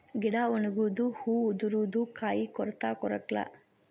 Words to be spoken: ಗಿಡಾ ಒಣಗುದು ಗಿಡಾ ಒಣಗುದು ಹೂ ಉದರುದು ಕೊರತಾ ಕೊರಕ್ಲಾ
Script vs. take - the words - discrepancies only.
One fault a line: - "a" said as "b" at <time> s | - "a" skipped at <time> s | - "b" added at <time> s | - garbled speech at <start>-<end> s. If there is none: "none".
- "ಗಿಡಾ ಒಣಗುದು" skipped at 1.1 s
- "ಕಾಯಿ" added at 2.1 s